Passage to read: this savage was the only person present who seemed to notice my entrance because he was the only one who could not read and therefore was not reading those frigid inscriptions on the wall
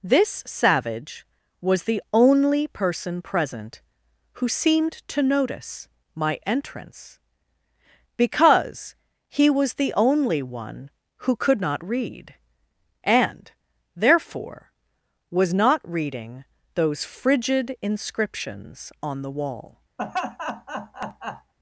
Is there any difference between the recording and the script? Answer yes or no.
no